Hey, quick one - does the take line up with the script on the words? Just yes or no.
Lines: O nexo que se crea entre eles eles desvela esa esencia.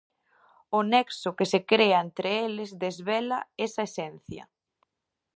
no